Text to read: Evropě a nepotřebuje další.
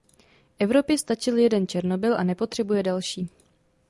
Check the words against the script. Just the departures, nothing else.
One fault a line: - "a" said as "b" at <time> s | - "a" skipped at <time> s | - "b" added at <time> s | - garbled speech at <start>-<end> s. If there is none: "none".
- "stačil jeden Černobyl" added at 1.0 s